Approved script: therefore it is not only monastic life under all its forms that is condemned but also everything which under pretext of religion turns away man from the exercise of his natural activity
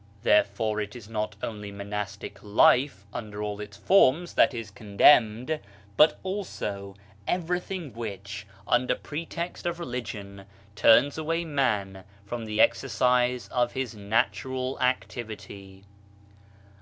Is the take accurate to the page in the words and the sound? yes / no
yes